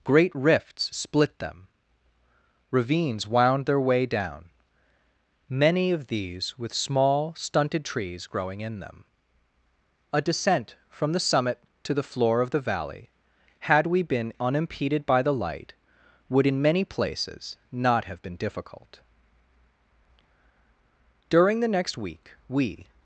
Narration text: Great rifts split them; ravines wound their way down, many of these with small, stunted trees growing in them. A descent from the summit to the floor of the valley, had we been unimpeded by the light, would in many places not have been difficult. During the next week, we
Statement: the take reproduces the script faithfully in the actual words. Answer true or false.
true